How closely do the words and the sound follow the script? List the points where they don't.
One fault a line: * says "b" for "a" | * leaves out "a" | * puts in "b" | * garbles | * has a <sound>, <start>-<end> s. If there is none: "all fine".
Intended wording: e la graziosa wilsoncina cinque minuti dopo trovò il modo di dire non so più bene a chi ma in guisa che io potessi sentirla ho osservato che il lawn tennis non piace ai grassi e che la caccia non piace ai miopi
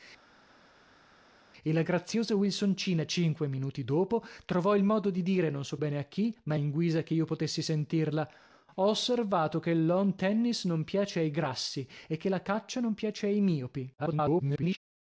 * leaves out "più"
* garbles